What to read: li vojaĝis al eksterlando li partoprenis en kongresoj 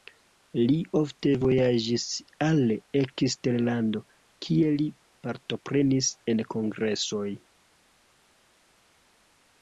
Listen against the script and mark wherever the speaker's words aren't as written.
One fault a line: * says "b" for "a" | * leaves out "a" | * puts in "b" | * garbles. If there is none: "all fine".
* puts in "ofte"
* puts in "kie"